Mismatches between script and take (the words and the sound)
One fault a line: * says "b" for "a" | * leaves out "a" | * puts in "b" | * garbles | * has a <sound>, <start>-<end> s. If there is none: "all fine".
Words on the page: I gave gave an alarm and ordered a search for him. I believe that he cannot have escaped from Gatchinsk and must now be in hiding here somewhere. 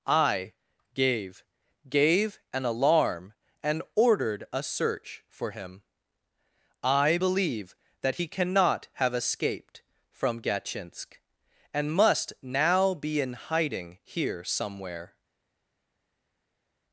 all fine